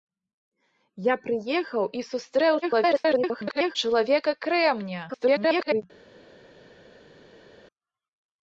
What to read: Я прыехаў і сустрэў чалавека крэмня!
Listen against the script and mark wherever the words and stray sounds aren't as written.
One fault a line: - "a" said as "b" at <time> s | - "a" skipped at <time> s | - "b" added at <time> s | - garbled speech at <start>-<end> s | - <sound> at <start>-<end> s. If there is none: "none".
- garbled speech at 2.6-3.8 s
- garbled speech at 5.1-5.8 s